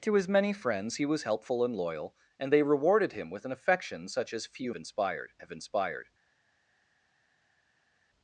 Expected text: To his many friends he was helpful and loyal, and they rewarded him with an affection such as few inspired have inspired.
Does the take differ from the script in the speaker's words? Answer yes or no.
no